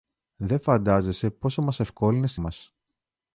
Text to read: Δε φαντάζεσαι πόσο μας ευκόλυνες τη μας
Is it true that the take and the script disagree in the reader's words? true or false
false